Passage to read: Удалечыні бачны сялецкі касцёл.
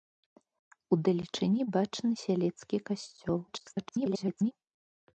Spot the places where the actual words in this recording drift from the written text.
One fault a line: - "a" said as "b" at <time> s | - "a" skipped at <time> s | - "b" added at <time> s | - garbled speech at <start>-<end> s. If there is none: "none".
- garbled speech at 3.5-4.5 s